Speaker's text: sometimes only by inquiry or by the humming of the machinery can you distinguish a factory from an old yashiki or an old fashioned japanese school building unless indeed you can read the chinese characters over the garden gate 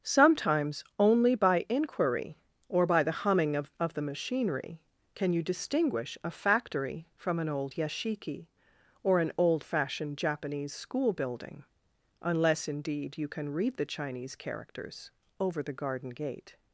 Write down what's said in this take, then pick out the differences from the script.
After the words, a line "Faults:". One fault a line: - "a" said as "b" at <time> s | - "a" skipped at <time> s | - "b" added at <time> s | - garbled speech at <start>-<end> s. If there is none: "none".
sometimes only by inquiry or by the humming of of the machinery can you distinguish a factory from an old yashiki or an old fashioned japanese school building unless indeed you can read the chinese characters over the garden gate
Faults:
- "of" added at 3.8 s